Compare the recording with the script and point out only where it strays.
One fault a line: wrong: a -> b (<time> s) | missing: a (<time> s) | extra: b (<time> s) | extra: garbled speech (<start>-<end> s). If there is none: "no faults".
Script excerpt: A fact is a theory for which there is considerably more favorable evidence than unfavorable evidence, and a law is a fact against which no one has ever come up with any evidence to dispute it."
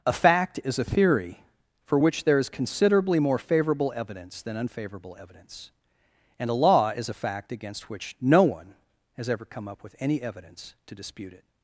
no faults